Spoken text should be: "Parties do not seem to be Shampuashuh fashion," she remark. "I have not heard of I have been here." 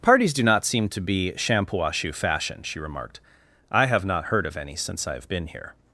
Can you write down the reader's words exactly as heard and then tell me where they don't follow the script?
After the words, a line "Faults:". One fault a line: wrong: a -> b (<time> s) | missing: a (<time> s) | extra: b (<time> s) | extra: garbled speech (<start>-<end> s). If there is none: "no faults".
"Parties do not seem to be Shampuashuh fashion," she remarked. "I have not heard of any since I have been here."
Faults:
wrong: remark -> remarked (2.8 s)
extra: any since (4.6 s)